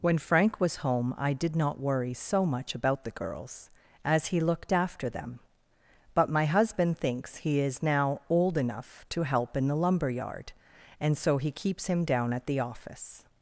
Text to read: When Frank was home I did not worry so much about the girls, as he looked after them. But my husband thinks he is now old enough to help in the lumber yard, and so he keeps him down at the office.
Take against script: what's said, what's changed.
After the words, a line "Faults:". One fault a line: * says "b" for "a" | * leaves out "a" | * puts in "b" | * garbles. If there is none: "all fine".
When Frank was home I did not worry so much about the girls, as he looked after them. But my husband thinks he is now old enough to help in the lumber yard, and so he keeps him down at the office.
Faults:
all fine